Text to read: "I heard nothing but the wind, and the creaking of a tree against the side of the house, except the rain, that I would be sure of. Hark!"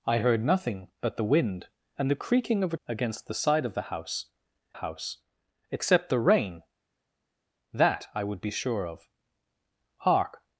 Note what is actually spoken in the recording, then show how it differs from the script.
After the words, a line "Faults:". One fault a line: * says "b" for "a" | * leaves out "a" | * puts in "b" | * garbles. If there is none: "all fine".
"I heard nothing but the wind, and the creaking of a against the side of the house house, except the rain, that I would be sure of. Hark!"
Faults:
* leaves out "tree"
* puts in "house"